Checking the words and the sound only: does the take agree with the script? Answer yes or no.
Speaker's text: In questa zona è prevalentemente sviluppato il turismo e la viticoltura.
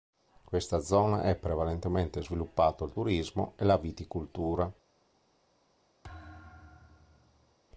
no